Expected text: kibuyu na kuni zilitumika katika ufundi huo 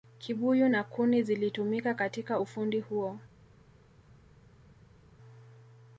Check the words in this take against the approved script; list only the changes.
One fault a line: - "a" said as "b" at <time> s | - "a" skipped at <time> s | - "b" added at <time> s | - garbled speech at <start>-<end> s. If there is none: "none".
none